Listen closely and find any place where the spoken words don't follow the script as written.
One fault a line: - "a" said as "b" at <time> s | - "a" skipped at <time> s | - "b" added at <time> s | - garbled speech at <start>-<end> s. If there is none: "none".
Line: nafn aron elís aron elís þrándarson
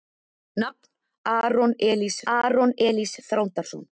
none